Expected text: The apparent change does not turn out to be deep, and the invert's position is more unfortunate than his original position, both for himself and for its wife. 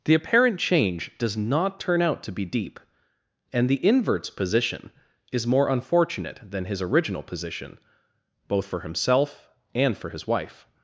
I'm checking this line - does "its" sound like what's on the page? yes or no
no